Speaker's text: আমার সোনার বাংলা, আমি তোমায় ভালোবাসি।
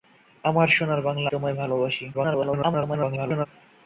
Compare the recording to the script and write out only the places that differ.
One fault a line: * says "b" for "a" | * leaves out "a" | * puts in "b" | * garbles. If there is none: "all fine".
* leaves out "আমি"
* garbles